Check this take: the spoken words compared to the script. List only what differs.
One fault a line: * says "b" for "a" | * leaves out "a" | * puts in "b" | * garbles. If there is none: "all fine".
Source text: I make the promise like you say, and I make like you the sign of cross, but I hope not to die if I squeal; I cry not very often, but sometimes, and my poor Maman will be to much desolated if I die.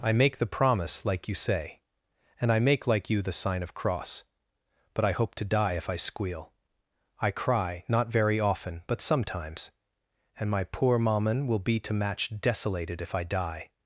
* leaves out "not"
* says "match" for "much"